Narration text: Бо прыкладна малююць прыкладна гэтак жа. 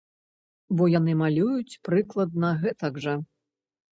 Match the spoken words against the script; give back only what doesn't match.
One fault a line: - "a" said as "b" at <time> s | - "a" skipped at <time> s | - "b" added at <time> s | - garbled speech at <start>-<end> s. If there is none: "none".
- "прыкладна" said as "яны" at 1.0 s